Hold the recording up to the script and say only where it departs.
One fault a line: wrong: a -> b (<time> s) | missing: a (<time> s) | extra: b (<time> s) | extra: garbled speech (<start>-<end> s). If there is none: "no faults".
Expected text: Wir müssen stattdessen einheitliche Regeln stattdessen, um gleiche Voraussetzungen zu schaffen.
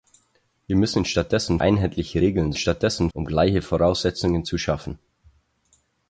no faults